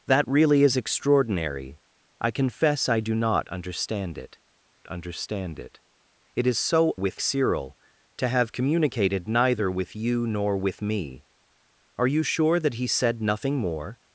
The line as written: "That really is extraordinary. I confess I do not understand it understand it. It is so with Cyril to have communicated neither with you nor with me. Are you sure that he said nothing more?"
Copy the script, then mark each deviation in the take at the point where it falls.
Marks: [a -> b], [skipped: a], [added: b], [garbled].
"That really is extraordinary. I confess I do not understand it understand it. It is so with Cyril to have communicated neither with you nor with me. Are you sure that he said nothing more?"